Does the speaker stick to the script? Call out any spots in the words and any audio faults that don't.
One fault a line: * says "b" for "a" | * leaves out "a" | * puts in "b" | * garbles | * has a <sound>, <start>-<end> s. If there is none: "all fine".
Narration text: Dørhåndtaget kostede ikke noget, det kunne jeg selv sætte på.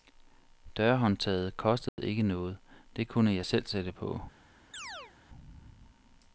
* has a dropout, 1.9-2.0 s
* has a chirp, 4.7-5.1 s